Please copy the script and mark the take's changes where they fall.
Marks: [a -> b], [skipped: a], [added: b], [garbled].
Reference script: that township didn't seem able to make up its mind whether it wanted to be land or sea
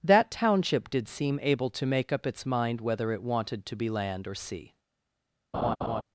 that township [didn't -> did] seem able to make up its mind whether it wanted to be land or sea